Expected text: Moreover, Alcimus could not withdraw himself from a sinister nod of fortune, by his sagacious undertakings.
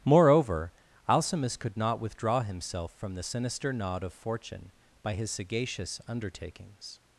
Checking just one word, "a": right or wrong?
wrong